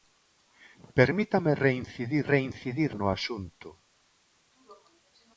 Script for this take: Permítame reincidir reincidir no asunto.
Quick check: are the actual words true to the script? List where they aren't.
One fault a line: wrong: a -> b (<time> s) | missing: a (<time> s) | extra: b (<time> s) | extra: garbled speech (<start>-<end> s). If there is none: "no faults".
no faults